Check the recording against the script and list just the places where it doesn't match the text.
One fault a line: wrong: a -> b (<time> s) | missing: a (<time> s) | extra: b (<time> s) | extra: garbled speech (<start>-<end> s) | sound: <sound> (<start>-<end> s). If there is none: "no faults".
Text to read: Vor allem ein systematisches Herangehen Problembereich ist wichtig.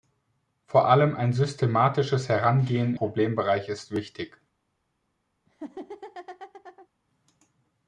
sound: laugh (5.5-6.9 s)